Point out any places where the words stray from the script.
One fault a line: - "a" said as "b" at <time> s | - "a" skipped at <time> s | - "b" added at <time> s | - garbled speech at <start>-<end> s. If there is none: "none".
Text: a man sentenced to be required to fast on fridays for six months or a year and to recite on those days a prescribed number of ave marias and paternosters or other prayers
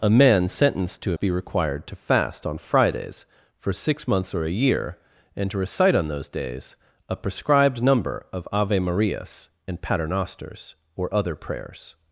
none